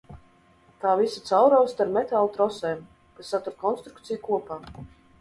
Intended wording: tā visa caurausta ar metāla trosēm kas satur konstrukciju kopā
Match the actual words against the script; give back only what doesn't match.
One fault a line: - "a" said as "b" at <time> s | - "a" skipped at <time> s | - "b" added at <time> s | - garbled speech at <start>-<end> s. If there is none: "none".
none